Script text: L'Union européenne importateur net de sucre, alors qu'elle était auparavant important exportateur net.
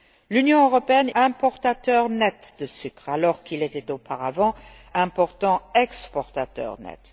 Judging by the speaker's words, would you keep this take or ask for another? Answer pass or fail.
pass